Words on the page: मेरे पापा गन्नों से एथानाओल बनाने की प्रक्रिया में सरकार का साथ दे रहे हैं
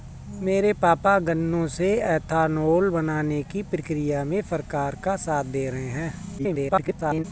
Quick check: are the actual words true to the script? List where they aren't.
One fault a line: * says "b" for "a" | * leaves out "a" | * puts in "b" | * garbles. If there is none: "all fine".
* garbles